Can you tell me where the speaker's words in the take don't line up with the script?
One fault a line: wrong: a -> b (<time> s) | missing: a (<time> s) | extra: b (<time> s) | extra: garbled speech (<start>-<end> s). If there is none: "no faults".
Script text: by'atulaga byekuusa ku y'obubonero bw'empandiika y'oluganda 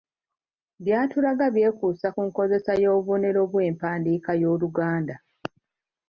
extra: nkozesa (2.3 s)